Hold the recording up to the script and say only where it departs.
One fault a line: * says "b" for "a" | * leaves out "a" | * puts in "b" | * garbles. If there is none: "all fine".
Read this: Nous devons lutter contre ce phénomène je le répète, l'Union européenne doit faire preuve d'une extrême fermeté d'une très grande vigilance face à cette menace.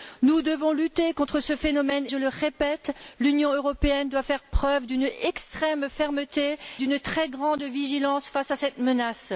all fine